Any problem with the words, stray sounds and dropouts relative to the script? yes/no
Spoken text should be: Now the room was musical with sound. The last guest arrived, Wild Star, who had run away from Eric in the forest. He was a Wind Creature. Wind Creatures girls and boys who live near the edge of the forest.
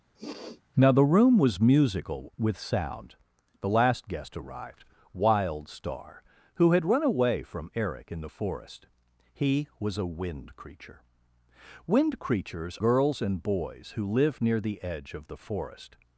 yes